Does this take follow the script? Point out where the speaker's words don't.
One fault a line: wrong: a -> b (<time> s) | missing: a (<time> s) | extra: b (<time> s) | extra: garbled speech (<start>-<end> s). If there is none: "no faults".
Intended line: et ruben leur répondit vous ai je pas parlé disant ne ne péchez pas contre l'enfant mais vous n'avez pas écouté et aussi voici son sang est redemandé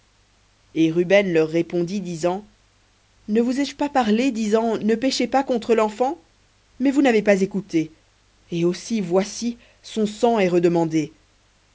extra: disant ne (2.0 s)
missing: ne (5.0 s)